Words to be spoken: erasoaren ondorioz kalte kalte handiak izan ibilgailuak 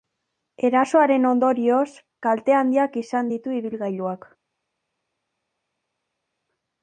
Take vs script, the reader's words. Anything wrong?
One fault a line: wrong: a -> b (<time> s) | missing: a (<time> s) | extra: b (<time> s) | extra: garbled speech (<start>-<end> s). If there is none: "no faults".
missing: kalte (2.6 s)
extra: ditu (3.3 s)